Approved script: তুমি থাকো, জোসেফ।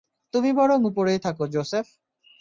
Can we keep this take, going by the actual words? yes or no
no